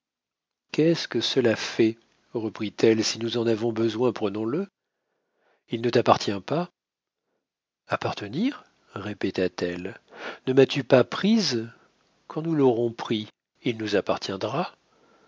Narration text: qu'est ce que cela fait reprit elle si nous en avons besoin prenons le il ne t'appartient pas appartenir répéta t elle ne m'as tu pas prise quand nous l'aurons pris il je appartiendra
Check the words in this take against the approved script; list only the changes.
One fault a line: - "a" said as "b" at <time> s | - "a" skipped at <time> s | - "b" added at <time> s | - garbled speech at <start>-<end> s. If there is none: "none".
- "je" said as "nous" at 13.8 s